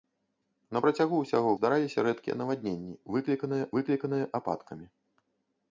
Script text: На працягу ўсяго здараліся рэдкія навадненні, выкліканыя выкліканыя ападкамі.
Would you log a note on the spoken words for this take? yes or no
no